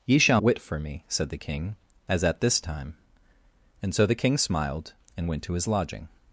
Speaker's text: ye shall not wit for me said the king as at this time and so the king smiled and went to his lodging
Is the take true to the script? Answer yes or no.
no